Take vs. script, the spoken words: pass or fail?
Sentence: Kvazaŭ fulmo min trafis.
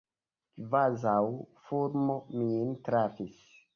pass